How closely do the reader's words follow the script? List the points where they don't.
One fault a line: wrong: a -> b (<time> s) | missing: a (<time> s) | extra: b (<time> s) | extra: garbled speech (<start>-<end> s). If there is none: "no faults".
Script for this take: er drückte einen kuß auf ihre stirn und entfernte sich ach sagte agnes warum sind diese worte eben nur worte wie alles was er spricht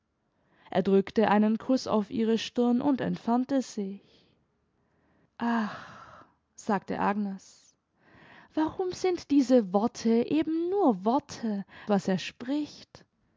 missing: wie alles (11.7 s)